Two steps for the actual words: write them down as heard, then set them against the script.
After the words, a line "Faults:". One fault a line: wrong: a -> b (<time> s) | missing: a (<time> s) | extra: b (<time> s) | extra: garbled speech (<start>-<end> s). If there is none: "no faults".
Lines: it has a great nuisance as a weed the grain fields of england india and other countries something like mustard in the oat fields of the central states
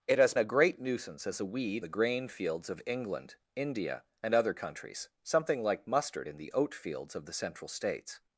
it has a great nuisance as a weed the grain fields of england india and other countries something like mustard in the oat fields of the central states
Faults:
no faults